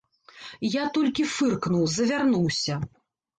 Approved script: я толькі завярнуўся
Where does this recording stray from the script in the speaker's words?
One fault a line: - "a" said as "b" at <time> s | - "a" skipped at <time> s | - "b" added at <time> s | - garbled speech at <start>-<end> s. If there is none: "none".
- "фыркнуў" added at 1.3 s